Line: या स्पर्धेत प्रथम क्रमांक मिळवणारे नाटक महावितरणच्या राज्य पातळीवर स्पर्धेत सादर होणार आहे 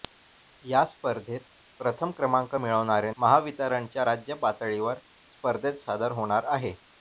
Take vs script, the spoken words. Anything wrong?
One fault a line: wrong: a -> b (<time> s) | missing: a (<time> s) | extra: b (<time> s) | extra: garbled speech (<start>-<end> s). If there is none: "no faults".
missing: नाटक (3.1 s)